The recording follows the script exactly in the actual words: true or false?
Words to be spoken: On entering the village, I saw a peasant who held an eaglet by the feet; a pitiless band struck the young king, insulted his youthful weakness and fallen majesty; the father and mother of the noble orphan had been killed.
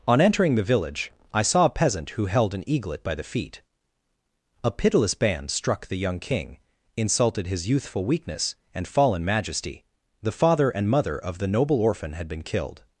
true